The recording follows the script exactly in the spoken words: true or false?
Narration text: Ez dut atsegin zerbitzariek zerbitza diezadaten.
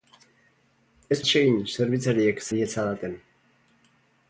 false